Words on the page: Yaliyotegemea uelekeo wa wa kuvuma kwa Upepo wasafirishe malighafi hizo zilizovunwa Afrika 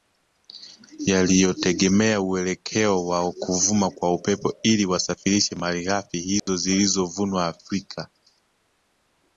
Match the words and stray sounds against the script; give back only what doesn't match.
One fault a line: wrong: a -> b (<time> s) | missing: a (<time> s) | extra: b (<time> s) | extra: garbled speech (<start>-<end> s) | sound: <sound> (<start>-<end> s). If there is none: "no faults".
missing: wa (3.3 s)
extra: ili (4.6 s)
sound: dropout (6.4-6.5 s)